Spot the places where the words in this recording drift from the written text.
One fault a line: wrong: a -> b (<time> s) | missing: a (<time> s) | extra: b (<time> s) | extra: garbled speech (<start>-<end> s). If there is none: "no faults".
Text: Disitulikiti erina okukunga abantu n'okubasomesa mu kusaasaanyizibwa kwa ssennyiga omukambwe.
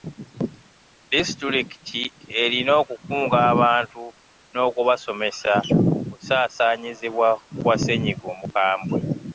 wrong: mu -> ku (5.7 s)